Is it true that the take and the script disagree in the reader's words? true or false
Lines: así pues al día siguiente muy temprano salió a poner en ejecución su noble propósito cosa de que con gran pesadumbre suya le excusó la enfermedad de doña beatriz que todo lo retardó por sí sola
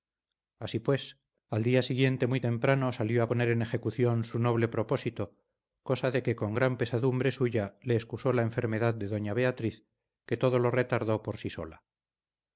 false